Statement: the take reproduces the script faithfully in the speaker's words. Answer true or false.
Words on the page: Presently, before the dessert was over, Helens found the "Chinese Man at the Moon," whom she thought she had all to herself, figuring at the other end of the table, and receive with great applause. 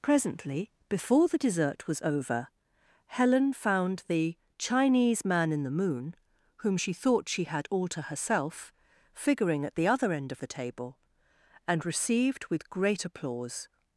false